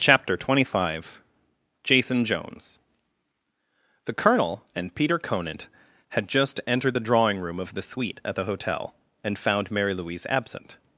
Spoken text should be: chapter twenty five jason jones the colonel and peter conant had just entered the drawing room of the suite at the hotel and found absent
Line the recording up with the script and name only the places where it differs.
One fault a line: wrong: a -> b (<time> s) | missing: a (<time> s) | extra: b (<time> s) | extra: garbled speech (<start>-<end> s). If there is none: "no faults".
extra: mary louise (9.7 s)